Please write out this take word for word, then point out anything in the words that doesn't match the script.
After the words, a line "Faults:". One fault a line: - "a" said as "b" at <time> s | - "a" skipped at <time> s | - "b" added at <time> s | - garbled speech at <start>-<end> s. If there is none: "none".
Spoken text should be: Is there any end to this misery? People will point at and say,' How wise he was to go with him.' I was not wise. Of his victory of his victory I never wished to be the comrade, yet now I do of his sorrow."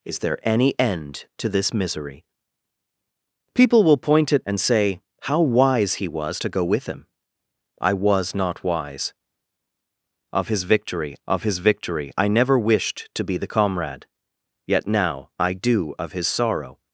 Is there any end to this misery? People will point at and say,' How wise he was to go with him.' I was not wise. Of his victory of his victory I never wished to be the comrade, yet now I do of his sorrow."
Faults:
none